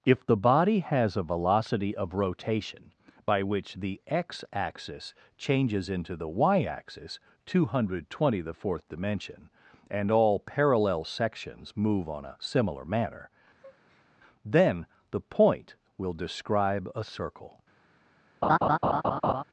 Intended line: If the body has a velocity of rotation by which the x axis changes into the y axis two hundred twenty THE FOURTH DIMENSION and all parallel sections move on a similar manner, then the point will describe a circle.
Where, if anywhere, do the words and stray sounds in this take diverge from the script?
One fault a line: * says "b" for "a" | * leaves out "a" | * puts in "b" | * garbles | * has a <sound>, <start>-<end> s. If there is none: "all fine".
* has a breath, 13.6-14.1 s
* has a laugh, 18.4-19.4 s